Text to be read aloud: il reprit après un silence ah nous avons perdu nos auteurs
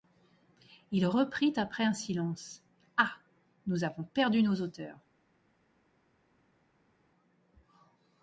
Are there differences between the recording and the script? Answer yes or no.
no